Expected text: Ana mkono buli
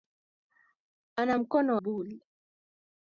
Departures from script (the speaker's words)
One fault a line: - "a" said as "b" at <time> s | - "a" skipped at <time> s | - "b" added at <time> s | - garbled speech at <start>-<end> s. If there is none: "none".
none